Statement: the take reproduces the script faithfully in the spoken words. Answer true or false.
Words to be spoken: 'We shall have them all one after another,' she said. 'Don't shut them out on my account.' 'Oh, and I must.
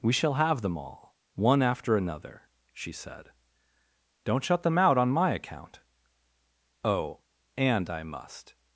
true